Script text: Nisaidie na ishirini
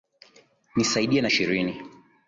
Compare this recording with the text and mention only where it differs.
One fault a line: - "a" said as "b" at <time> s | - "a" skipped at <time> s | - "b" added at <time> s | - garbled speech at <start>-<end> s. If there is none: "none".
none